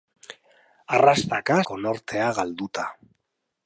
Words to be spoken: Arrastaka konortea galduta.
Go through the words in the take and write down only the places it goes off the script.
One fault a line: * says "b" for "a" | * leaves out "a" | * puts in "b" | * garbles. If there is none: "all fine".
all fine